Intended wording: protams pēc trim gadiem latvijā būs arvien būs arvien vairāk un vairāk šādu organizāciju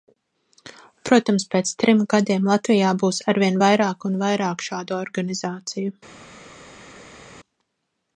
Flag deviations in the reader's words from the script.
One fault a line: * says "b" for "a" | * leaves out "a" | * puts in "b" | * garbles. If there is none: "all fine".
* leaves out "būs arvien"